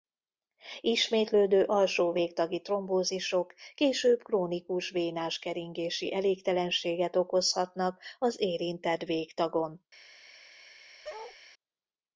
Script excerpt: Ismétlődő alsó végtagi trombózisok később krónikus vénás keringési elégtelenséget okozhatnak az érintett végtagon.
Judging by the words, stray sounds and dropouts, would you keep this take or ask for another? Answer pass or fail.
fail